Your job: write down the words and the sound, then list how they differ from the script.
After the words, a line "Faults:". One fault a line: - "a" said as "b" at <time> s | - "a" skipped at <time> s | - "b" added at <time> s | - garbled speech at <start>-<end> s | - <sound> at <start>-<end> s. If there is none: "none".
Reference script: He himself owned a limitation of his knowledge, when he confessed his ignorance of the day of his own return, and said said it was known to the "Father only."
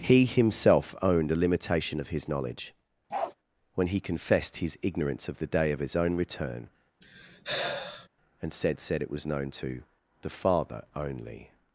He himself owned a limitation of his knowledge, when he confessed his ignorance of the day of his own return, and said said it was known to the "Father only."
Faults:
- bark at 3.1-3.3 s
- sigh at 7.0-8.1 s